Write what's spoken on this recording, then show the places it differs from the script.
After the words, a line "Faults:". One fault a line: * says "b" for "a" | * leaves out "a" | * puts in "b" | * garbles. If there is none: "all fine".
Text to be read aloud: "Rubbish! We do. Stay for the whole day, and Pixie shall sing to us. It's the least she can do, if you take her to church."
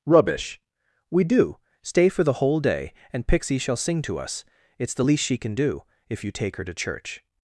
"Rubbish! We do. Stay for the whole day, and Pixie shall sing to us. It's the least she can do, if you take her to church."
Faults:
all fine